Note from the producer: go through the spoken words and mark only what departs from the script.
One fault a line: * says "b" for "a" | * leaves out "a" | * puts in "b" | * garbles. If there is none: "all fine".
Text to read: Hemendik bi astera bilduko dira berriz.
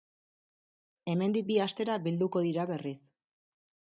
all fine